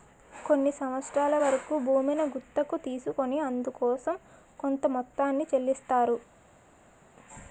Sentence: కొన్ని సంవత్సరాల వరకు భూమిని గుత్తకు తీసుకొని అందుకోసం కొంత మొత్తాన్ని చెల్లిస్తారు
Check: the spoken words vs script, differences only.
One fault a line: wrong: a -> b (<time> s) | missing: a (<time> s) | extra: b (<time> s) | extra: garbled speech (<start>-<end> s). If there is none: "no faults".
no faults